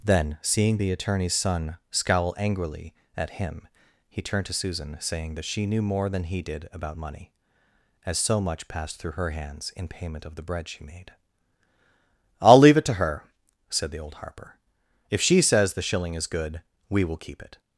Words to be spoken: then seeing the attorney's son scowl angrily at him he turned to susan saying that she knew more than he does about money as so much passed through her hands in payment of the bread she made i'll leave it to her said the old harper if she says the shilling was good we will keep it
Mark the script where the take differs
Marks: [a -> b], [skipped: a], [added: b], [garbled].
then seeing the attorney's son scowl angrily at him he turned to susan saying that she knew more than he [does -> did] about money as so much passed through her hands in payment of the bread she made i'll leave it to her said the old harper if she says the shilling [was -> is] good we will keep it